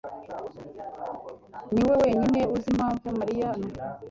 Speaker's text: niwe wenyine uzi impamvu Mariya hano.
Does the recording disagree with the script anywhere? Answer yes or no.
no